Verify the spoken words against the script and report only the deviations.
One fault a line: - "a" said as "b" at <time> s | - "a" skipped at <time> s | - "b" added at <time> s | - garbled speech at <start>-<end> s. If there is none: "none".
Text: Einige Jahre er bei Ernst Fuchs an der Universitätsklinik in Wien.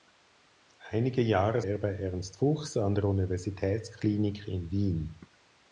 none